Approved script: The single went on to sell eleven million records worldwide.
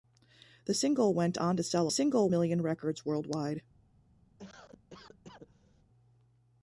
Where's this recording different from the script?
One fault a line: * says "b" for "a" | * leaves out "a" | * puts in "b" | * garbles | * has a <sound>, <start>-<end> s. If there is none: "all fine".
* says "single" for "eleven"
* has a cough, 4.4-5.8 s